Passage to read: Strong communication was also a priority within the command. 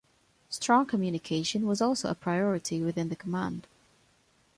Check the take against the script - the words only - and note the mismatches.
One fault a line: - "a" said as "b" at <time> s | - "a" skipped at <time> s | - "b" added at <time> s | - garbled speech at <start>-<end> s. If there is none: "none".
none